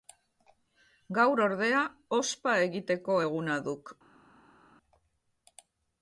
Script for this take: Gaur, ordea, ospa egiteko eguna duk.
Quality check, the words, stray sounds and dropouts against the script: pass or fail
pass